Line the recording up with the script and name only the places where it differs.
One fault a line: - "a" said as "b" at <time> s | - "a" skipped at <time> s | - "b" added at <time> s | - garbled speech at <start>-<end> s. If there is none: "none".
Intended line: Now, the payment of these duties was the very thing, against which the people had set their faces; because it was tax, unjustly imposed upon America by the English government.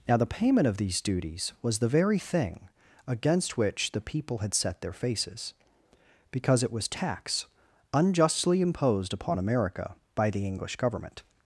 none